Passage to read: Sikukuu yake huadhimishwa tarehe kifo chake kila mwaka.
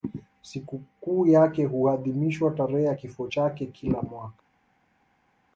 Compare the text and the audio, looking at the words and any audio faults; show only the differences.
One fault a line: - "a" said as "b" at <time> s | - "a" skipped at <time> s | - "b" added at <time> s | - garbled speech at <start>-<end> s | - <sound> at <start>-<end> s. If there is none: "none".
- "ya" added at 2.8 s